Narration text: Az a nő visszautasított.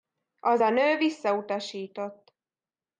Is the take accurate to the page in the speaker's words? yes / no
yes